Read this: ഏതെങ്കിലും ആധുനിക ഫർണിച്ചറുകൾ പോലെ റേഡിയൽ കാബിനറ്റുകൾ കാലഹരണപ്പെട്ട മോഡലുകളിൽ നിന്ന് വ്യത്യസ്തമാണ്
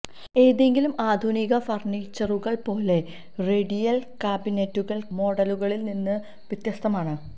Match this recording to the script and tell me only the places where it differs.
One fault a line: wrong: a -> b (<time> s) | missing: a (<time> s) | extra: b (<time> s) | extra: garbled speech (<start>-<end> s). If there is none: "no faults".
missing: കാലഹരണപ്പെട്ട (5.0 s)